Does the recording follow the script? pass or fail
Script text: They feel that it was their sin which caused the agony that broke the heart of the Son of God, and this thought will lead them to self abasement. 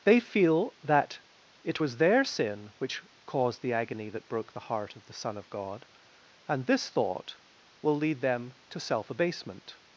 pass